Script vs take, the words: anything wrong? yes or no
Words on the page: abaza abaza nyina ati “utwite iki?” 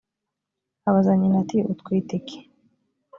yes